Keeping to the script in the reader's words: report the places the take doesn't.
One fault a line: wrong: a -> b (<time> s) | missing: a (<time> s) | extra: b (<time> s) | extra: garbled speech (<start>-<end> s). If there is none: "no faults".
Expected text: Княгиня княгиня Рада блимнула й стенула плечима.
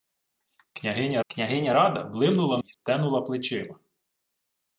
no faults